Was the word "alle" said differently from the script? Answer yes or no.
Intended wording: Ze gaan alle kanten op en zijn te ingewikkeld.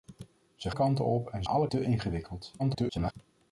yes